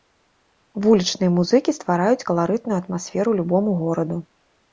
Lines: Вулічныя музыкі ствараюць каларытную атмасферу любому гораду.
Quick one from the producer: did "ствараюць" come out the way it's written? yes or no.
yes